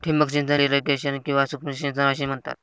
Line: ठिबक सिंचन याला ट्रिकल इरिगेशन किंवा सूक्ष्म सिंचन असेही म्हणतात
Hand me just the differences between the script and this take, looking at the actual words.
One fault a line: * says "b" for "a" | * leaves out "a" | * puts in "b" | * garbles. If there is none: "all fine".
* leaves out "याला ट्रिकल"